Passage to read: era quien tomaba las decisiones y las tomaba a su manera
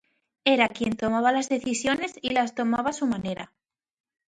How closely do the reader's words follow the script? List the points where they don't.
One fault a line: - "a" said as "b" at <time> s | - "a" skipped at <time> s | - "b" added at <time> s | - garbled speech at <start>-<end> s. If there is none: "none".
none